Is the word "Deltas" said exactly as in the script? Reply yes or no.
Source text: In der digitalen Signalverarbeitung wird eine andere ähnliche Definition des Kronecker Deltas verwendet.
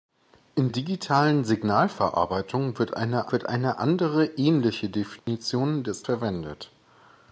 no